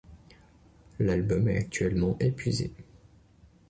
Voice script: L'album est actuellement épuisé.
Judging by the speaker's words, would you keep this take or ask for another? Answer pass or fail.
pass